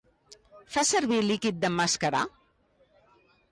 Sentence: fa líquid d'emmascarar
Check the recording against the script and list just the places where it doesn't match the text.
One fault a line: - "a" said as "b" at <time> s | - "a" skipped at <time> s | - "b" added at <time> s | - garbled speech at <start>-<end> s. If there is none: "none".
- "servir" added at 0.9 s